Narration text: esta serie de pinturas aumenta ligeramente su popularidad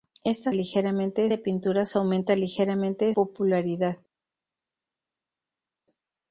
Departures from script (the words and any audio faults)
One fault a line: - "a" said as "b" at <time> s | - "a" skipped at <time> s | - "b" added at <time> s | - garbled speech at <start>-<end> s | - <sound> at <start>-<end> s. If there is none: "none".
- "serie" said as "ligeramente" at 0.5 s
- "su" skipped at 3.1 s